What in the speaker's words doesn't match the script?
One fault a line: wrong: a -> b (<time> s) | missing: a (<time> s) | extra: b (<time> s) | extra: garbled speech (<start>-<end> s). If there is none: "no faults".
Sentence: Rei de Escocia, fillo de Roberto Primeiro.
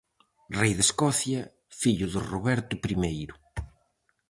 no faults